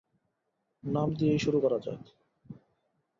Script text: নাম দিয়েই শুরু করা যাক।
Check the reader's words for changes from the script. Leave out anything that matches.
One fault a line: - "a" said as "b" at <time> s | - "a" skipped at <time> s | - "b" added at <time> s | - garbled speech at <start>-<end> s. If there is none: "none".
none